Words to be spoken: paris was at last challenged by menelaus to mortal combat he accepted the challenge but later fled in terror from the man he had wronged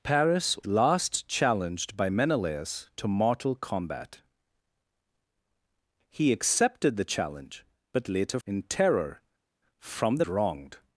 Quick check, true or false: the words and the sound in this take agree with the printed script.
false